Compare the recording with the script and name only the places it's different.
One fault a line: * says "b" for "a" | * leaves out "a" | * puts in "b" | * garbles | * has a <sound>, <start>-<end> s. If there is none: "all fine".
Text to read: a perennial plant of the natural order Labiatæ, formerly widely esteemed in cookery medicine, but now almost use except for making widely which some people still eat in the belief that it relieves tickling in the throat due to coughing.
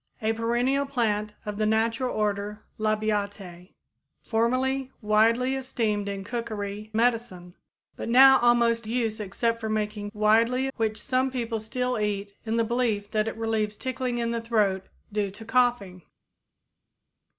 all fine